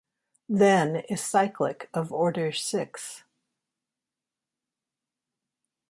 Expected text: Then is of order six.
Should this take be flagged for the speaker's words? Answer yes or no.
yes